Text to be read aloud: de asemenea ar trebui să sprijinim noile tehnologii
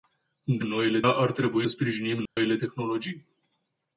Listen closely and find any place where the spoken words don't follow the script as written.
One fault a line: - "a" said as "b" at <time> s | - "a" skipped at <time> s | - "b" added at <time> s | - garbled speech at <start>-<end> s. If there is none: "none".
- "asemenea" said as "noile" at 0.6 s
- "să" skipped at 1.7 s